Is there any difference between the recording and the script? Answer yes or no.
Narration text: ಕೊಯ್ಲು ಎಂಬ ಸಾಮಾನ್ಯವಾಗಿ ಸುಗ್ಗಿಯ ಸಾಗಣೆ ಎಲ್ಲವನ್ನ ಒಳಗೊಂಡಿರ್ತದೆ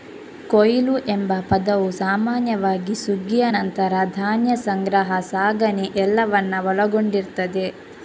yes